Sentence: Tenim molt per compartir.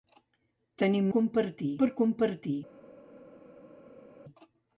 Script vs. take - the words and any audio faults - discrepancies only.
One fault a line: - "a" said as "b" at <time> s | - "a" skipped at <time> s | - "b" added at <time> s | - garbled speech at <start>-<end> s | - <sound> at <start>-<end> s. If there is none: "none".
- "molt" said as "compartir" at 1.2 s